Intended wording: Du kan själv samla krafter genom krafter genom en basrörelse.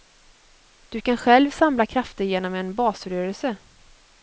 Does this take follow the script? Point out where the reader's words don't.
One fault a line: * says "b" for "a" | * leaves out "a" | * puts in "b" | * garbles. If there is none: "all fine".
* leaves out "krafter genom"